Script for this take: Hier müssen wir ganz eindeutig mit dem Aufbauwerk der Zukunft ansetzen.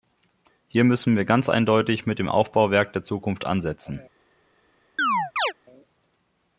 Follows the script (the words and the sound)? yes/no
no